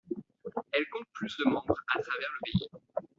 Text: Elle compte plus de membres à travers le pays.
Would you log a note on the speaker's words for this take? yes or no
no